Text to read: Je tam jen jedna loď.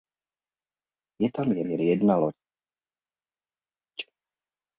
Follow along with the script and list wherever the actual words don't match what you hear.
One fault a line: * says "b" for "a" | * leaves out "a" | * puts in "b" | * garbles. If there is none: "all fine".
* puts in "jen"